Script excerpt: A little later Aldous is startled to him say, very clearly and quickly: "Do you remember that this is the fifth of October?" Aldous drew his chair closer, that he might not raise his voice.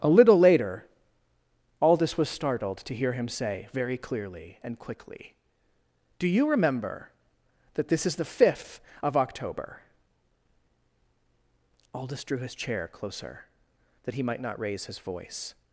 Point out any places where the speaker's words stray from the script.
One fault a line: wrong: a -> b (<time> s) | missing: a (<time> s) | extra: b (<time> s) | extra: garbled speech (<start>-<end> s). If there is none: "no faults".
wrong: is -> was (2.2 s)
extra: hear (3.0 s)